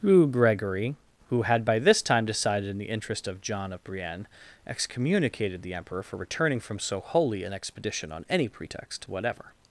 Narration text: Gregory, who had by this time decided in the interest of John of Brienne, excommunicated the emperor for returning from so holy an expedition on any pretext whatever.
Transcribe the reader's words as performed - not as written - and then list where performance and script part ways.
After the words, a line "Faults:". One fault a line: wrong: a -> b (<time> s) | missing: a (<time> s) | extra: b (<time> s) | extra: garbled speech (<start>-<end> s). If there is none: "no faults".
who Gregory, who had by this time decided in the interest of John of Brienne, excommunicated the emperor for returning from so holy an expedition on any pretext whatever.
Faults:
extra: who (0.0 s)